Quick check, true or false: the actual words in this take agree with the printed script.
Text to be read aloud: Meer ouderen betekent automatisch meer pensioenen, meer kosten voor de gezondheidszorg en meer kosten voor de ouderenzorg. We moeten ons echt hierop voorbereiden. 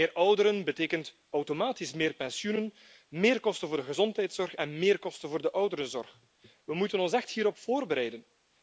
true